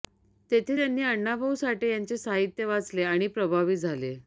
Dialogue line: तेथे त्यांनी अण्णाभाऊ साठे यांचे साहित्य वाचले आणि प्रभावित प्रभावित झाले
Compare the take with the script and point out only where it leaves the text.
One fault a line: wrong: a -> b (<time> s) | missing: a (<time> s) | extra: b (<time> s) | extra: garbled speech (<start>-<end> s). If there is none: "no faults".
missing: प्रभावित (3.8 s)